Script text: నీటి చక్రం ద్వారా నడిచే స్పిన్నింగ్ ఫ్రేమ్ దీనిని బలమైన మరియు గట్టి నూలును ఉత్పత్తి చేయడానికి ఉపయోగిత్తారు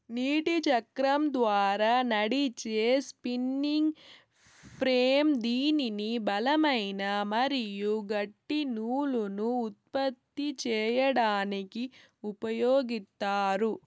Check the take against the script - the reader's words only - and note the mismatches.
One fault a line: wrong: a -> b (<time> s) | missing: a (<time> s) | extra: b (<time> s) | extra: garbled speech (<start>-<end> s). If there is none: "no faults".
no faults